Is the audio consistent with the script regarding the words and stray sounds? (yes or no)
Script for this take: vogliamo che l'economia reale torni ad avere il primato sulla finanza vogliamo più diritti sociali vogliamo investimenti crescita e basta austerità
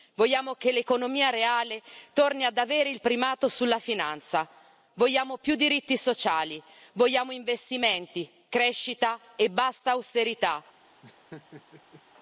no